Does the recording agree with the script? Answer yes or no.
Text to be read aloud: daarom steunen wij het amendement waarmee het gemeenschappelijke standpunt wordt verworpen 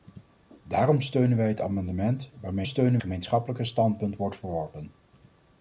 no